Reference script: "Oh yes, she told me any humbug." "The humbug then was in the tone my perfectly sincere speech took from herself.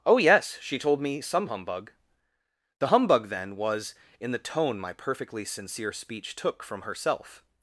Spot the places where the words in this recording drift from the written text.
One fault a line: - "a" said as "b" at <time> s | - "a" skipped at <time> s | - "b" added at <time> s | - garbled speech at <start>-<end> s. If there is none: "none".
- "any" said as "some" at 1.2 s